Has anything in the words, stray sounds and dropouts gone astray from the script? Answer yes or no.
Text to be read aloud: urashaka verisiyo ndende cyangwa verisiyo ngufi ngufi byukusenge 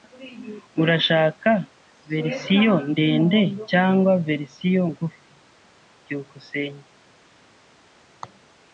yes